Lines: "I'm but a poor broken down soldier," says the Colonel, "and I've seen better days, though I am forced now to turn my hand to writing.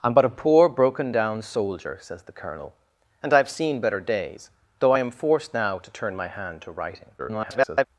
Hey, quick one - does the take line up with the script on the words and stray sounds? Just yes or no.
no